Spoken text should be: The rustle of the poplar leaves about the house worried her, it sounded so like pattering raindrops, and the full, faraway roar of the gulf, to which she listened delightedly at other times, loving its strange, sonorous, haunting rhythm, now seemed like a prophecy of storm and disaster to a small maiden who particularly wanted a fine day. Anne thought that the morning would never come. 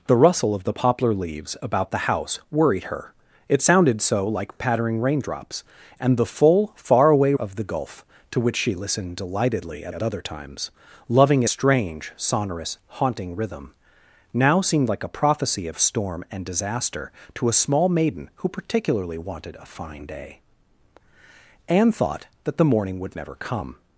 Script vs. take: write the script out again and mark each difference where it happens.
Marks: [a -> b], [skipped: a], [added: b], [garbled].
The rustle of the poplar leaves about the house worried her, it sounded so like pattering raindrops, and the full, faraway [skipped: roar] of the gulf, to which she listened delightedly at [added: at] other times, loving [skipped: its] strange, sonorous, haunting rhythm, now seemed like a prophecy of storm and disaster to a small maiden who particularly wanted a fine day. Anne thought that the morning would never come.